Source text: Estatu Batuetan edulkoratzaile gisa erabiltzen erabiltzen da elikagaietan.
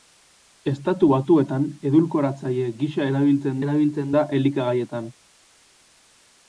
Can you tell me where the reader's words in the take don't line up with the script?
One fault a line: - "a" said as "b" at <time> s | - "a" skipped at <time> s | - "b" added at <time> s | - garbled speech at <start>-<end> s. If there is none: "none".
none